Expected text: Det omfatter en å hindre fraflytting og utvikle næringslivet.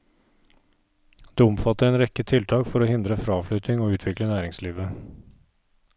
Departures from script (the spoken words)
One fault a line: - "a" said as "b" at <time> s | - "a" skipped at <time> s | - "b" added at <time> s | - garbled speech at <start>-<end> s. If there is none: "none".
- "rekke tiltak for" added at 2.0 s